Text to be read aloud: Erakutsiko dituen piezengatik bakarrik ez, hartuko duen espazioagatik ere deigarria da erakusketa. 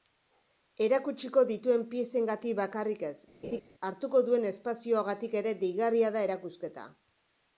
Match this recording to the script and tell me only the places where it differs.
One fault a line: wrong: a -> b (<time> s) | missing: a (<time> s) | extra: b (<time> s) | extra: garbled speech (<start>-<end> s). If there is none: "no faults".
no faults